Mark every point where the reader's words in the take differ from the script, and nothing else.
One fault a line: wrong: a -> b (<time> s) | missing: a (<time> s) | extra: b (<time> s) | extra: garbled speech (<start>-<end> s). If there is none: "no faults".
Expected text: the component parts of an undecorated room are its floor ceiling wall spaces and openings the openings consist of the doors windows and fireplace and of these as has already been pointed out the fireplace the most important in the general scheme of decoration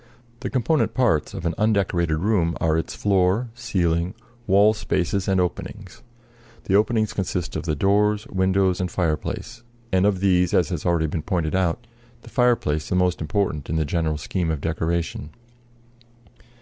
no faults